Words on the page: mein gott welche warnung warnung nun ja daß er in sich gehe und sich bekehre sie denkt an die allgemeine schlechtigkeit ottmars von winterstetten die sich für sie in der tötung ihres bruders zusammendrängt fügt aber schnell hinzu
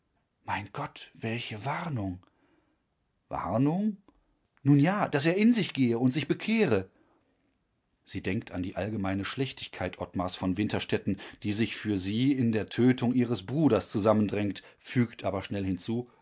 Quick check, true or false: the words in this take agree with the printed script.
true